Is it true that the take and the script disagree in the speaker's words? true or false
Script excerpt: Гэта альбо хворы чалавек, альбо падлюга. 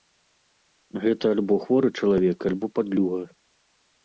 false